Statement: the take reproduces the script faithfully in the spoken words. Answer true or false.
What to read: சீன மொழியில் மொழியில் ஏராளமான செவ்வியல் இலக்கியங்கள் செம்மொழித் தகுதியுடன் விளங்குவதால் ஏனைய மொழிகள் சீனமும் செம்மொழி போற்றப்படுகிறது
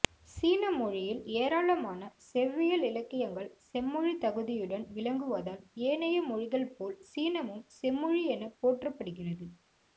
false